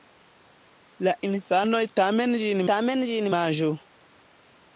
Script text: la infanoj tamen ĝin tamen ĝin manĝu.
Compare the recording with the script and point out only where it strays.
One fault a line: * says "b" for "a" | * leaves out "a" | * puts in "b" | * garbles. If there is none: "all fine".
all fine